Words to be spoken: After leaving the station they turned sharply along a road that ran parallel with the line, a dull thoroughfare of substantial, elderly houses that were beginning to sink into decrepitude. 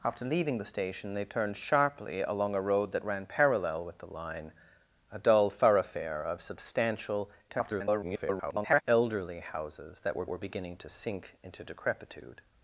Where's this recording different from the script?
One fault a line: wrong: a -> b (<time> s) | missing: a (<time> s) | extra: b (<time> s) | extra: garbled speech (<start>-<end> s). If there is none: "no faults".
extra: garbled speech (7.5-8.8 s)
extra: were (10.3 s)